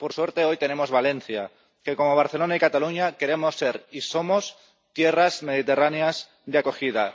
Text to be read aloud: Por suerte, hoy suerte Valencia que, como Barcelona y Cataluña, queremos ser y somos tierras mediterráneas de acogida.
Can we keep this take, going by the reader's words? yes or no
no